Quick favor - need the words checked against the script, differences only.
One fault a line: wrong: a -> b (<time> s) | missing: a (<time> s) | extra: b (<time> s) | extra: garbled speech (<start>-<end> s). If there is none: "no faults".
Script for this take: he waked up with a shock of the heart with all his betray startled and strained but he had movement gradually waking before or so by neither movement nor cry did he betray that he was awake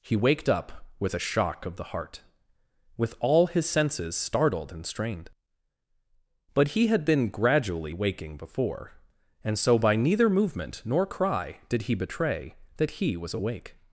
wrong: betray -> senses (3.7 s)
wrong: movement -> been (7.0 s)
wrong: or -> and (9.4 s)